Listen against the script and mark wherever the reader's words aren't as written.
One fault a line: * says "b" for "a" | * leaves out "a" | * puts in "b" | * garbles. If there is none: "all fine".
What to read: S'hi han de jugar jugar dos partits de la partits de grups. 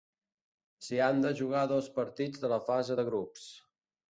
* leaves out "jugar"
* says "fase" for "partits"